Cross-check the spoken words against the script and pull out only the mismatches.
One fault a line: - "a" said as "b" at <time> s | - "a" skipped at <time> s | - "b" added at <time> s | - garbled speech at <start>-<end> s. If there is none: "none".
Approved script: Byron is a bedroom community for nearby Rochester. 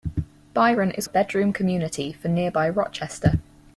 none